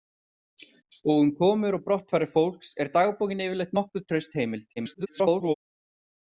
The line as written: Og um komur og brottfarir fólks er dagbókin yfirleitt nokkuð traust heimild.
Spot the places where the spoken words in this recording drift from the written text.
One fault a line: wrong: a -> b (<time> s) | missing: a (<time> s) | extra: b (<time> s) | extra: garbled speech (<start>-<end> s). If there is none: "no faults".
extra: garbled speech (4.8-5.5 s)